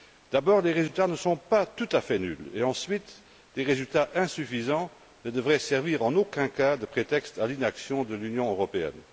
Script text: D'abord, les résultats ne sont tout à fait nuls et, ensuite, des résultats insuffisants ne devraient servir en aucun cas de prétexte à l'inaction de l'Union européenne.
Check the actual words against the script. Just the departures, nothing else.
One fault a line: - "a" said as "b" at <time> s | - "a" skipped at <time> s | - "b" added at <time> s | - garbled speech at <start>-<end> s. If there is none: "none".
- "pas" added at 1.4 s